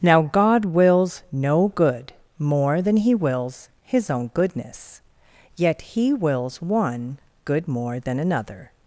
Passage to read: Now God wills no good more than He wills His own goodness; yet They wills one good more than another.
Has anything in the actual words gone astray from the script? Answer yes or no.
yes